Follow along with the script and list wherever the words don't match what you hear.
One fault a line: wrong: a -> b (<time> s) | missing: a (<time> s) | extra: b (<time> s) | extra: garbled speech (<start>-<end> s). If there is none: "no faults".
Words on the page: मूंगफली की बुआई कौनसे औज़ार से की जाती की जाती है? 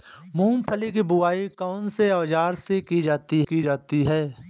no faults